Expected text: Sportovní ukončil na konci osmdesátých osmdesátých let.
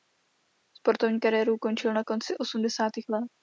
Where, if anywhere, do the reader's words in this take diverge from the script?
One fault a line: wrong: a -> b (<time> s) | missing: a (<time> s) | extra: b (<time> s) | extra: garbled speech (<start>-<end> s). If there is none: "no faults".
extra: kariéru (1.2 s)
missing: osmdesátých (3.1 s)